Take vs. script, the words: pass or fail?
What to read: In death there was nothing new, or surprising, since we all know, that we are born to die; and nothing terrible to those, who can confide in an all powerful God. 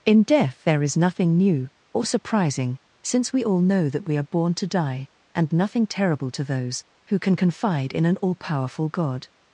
fail